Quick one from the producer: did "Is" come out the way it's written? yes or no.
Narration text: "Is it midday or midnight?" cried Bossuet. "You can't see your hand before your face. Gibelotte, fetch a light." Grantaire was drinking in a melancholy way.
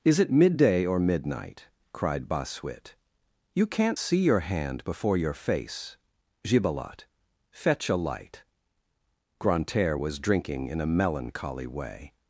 yes